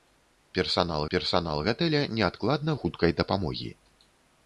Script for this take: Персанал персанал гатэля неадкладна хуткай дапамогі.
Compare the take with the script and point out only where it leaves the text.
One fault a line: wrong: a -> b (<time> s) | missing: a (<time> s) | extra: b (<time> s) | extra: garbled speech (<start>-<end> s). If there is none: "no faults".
no faults